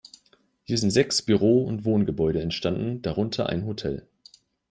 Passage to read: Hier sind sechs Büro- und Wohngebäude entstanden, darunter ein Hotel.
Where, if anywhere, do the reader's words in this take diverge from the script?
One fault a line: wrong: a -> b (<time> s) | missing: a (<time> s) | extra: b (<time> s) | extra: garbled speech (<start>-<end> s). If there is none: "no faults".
no faults